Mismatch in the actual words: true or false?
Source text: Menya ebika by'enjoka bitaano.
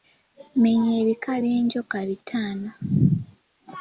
false